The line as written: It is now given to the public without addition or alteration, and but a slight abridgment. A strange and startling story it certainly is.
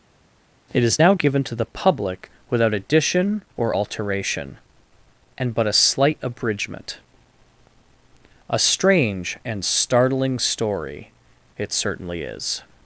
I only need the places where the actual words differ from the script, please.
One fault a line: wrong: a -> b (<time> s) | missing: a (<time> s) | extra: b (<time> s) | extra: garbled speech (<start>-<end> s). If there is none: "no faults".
no faults